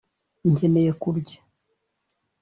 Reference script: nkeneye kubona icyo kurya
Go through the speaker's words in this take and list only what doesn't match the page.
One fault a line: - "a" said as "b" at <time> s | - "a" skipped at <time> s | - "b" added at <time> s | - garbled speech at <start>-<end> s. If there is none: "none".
- "kubona icyo" skipped at 0.9 s